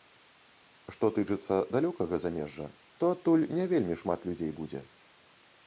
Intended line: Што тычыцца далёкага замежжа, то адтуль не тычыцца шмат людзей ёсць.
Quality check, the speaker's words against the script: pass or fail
fail